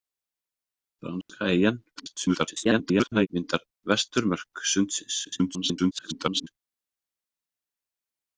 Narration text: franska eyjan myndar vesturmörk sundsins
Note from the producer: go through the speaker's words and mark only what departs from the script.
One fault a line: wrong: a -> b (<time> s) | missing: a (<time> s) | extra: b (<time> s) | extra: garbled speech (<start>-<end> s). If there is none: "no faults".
extra: garbled speech (2.0-3.3 s)
extra: garbled speech (5.2-6.5 s)